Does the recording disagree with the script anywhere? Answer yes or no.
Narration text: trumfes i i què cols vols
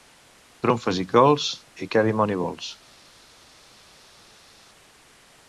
yes